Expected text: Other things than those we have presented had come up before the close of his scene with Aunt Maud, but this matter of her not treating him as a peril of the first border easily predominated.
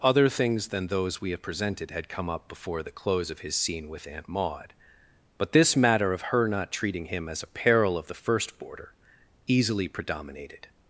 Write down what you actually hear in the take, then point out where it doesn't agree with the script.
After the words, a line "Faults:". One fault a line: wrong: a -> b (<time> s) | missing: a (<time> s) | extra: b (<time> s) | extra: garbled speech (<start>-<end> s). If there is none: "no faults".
Other things than those we have presented had come up before the close of his scene with Aunt Maud, but this matter of her not treating him as a peril of the first border easily predominated.
Faults:
no faults